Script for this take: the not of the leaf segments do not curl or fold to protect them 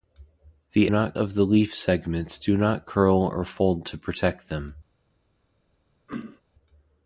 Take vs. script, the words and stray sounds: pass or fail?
fail